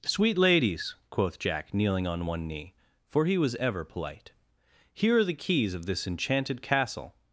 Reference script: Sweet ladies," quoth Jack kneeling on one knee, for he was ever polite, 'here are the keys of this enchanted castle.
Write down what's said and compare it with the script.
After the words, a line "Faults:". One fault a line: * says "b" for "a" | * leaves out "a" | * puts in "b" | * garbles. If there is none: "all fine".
Sweet ladies," quoth Jack kneeling on one knee, for he was ever polite, 'here are the keys of this enchanted castle.
Faults:
all fine